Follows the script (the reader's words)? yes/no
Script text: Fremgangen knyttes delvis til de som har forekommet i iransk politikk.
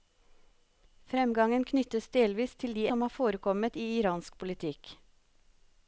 yes